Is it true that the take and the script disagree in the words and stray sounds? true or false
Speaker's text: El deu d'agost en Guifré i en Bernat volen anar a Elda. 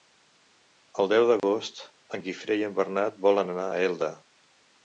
true